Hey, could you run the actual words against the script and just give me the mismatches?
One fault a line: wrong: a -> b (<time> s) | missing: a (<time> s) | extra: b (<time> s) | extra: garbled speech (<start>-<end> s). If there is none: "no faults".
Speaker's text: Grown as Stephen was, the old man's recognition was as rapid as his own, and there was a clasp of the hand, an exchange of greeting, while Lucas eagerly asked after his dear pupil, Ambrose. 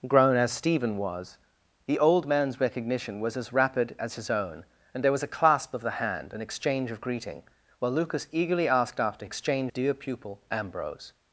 wrong: his -> exchange (9.2 s)